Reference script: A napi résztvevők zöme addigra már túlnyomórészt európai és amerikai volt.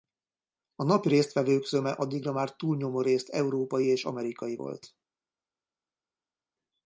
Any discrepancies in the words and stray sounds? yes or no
no